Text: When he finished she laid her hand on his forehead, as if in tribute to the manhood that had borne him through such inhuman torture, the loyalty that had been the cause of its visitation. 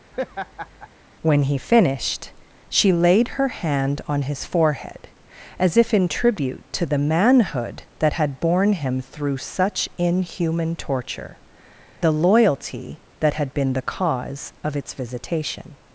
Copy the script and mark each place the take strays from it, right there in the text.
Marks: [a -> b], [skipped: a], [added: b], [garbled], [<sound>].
[laugh] When he finished she laid her hand on his forehead, as if in tribute to the manhood that had borne him through such inhuman torture, the loyalty that had been the cause of its visitation.